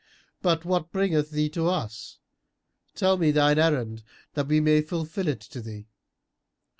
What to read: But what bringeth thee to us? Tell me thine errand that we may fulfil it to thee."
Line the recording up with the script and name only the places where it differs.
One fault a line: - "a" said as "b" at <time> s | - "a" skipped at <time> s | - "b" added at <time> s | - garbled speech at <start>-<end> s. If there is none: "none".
none